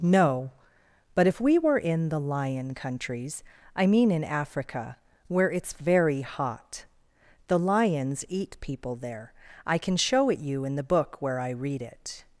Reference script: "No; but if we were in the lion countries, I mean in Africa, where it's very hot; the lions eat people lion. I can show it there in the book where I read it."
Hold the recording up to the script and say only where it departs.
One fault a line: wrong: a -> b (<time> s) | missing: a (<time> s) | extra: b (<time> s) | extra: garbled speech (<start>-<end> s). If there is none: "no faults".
wrong: lion -> there (8.9 s)
wrong: there -> you (10.4 s)